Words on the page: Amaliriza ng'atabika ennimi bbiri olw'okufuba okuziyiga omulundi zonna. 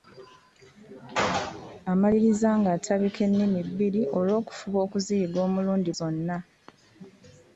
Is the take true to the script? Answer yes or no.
yes